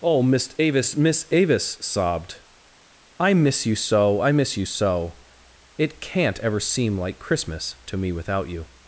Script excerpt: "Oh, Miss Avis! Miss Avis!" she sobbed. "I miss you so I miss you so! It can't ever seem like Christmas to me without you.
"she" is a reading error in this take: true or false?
true